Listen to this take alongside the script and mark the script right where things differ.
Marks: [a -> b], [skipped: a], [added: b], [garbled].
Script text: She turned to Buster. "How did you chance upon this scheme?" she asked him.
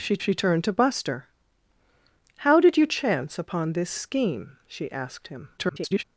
She [added: she] turned to Buster. "How did you chance upon this scheme?" she asked him. [garbled]